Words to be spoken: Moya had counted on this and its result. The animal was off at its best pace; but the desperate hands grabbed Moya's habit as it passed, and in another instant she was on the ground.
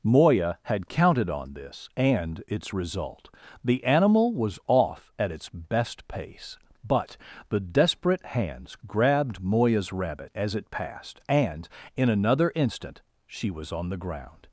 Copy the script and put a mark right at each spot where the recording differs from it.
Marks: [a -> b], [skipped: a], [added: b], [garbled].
Moya had counted on this and its result. The animal was off at its best pace; but the desperate hands grabbed Moya's [habit -> rabbit] as it passed, and in another instant she was on the ground.